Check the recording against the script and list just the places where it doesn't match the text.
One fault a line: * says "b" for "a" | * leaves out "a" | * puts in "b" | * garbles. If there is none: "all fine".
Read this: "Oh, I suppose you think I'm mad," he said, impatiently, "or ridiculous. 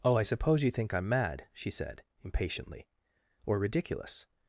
* says "she" for "he"